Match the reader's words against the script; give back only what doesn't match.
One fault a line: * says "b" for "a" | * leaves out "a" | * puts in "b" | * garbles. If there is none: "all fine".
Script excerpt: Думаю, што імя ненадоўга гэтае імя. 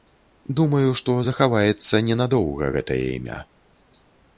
* says "захаваецца" for "імя"